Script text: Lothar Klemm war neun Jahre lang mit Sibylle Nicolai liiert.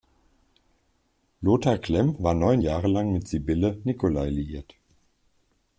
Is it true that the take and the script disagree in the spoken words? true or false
false